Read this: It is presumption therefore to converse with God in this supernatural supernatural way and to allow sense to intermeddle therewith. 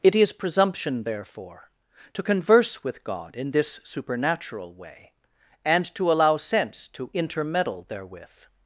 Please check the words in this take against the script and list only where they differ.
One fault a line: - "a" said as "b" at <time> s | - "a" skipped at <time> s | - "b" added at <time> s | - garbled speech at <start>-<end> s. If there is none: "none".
- "supernatural" skipped at 4.7 s